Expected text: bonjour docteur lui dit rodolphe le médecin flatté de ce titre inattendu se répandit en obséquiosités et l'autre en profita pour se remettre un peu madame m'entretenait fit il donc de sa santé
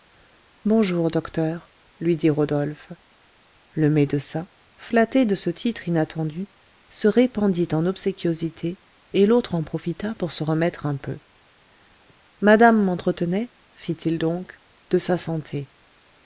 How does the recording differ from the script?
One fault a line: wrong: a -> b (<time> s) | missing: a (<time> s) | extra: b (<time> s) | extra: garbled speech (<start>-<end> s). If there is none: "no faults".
no faults